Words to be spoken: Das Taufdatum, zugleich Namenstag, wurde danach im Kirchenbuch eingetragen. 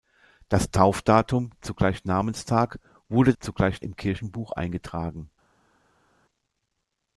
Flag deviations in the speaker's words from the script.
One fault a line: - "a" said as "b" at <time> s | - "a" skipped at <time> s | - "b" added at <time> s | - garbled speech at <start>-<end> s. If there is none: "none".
- "danach" said as "zugleich" at 3.4 s